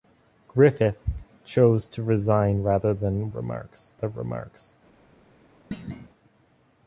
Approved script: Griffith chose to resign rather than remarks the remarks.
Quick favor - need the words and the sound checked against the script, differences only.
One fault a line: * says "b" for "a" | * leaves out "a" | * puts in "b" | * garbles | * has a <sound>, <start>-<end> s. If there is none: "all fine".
* has a thud, 5.7-6.1 s